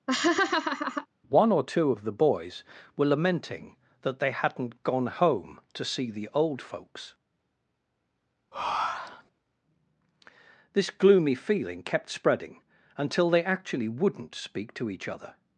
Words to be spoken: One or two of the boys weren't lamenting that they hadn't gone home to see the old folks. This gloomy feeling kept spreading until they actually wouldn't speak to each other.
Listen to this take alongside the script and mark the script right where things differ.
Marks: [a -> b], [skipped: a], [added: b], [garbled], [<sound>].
[laugh] One or two of the boys [weren't -> were] lamenting that they hadn't gone home to see the old folks. [breath] This gloomy feeling kept spreading until they actually wouldn't speak to each other.